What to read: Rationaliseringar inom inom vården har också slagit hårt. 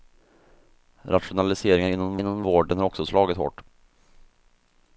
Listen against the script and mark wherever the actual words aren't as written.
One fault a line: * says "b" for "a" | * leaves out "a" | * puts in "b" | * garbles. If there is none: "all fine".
all fine